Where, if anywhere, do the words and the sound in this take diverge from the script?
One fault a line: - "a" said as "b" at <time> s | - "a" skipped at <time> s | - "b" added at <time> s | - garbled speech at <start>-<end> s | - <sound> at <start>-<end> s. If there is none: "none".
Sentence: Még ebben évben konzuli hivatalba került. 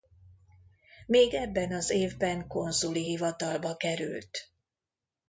- "az" added at 1.7 s